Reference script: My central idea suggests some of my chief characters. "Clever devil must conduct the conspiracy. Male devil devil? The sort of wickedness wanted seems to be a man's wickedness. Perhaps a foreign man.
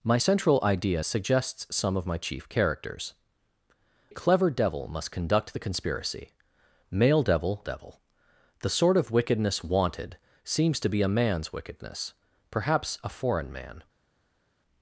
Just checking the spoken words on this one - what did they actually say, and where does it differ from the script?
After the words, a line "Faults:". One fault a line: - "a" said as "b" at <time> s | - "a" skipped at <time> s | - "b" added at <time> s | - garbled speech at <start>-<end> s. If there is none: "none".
My central idea suggests some of my chief characters. "Clever devil must conduct the conspiracy. Male devil devil? The sort of wickedness wanted seems to be a man's wickedness. Perhaps a foreign man.
Faults:
none